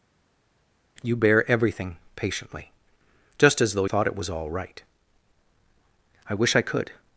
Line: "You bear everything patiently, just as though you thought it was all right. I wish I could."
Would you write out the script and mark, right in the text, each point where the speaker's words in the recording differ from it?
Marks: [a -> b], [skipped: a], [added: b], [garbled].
"You bear everything patiently, just as though [skipped: you] thought it was all right. I wish I could."